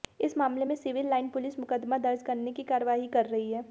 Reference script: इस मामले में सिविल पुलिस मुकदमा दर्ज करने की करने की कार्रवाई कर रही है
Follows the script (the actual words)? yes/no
no